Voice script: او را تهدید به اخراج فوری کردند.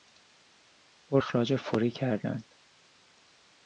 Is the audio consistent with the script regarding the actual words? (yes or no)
no